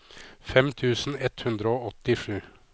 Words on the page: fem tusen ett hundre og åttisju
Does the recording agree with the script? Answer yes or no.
yes